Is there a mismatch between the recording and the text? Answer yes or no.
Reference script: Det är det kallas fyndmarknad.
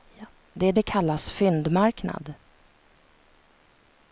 no